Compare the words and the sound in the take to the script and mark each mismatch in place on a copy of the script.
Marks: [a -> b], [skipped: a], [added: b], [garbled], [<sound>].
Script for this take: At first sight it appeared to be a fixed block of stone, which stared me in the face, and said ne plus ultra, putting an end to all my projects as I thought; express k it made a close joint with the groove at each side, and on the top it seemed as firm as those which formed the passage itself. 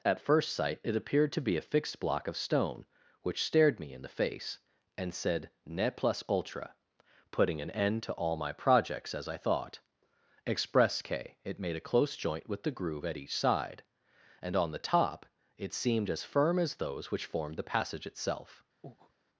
At first sight it appeared to be a fixed block of stone, which stared me in the face, and said ne plus ultra, putting an end to all my projects as I thought; express k it made a close joint with the groove at each side, and on the top it seemed as firm as those which formed the passage itself. [breath]